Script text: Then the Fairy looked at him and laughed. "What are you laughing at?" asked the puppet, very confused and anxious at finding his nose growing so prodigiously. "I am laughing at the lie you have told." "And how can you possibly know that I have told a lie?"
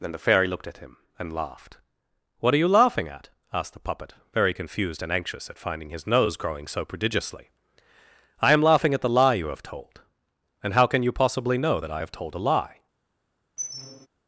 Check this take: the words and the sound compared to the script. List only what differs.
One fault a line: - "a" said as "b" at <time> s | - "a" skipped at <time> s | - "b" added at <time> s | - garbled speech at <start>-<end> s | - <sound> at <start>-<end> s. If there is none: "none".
- squeak at 13.6-14.1 s